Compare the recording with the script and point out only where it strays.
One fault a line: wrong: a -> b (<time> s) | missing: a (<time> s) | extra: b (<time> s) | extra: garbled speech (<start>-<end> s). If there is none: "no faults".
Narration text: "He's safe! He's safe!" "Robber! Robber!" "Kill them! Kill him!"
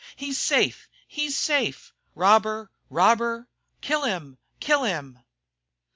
wrong: them -> him (4.0 s)